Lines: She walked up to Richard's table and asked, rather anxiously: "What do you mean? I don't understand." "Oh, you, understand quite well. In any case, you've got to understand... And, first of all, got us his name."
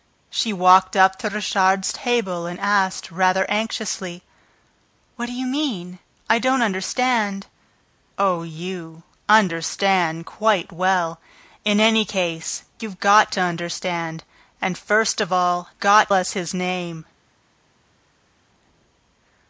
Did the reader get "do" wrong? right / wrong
right